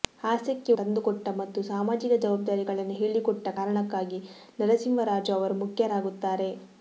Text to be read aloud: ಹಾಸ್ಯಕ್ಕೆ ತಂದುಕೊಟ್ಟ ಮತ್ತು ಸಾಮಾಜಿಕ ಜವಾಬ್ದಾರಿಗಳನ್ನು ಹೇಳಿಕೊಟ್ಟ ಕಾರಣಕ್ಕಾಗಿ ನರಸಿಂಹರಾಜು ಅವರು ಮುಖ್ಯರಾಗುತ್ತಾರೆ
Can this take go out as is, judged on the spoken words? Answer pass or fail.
pass